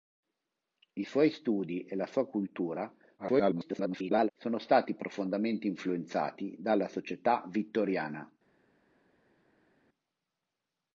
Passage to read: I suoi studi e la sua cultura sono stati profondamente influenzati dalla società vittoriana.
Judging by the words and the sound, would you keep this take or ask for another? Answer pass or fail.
fail